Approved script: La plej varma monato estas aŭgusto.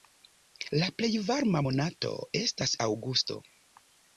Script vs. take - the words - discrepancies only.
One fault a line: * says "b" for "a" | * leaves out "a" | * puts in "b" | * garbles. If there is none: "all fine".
all fine